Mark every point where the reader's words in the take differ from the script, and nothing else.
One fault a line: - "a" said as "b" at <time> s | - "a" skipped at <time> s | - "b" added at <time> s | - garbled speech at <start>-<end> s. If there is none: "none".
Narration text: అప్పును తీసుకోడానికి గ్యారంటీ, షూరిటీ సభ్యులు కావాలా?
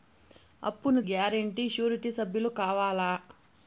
- "తీసుకోడానికి" skipped at 1.0 s